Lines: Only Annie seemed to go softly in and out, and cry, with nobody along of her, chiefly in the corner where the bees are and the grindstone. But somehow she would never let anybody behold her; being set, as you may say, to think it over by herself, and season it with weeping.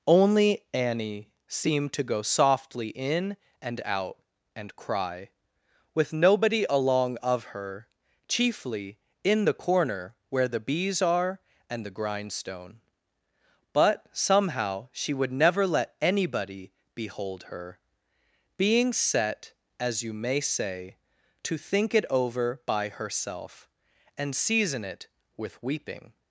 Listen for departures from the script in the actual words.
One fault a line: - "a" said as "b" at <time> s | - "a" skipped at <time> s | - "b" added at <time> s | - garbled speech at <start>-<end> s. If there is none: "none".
none